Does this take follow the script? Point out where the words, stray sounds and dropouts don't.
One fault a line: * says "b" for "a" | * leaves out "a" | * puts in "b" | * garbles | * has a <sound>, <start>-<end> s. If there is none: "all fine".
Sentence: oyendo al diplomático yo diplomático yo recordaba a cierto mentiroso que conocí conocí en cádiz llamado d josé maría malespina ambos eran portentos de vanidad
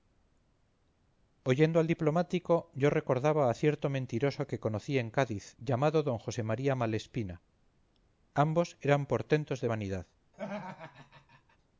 * leaves out "diplomático yo"
* leaves out "conocí"
* has a laugh, 10.3-11.6 s